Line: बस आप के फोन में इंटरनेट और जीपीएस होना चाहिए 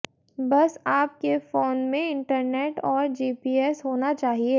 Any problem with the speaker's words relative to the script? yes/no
no